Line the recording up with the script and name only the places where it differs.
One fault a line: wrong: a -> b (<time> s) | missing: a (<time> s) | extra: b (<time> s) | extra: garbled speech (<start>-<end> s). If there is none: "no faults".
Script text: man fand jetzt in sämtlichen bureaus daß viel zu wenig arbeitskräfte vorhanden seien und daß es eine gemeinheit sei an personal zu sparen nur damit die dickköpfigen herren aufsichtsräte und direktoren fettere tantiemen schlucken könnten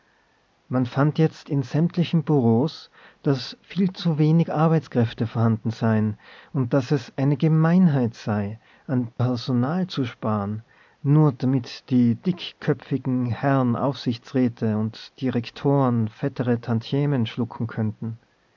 no faults